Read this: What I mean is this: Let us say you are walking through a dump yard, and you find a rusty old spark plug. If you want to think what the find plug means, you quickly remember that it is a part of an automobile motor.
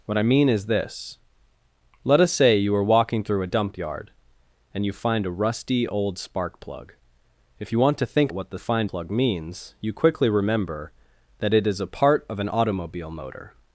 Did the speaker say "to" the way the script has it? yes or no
yes